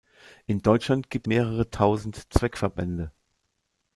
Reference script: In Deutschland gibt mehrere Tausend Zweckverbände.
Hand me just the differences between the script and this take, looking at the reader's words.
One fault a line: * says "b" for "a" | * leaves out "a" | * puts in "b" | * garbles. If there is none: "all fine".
all fine